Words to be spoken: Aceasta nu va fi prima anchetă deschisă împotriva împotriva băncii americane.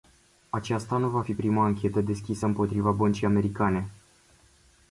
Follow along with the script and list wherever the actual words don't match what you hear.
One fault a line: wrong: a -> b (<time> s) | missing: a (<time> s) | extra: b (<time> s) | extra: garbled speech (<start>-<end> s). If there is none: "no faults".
missing: împotriva (2.9 s)